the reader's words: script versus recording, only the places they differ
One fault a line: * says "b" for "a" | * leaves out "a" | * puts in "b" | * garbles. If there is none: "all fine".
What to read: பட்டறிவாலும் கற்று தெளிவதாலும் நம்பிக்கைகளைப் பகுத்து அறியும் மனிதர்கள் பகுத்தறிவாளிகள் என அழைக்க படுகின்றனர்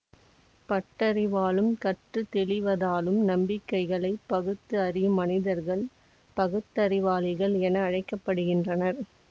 all fine